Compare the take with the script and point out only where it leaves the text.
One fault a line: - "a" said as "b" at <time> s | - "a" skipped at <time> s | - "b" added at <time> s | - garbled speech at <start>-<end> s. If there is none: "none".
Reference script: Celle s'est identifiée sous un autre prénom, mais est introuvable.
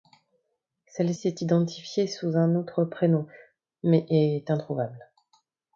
none